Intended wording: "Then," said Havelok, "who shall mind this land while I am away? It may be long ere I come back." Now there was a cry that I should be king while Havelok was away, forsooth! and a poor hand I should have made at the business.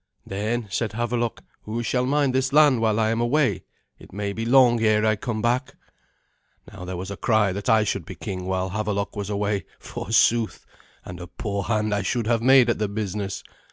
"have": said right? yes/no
yes